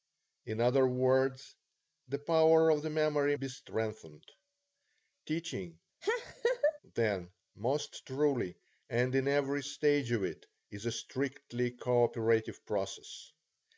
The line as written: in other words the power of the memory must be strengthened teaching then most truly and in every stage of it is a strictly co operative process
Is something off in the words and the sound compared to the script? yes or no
yes